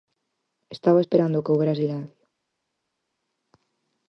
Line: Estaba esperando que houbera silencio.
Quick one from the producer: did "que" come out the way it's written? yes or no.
yes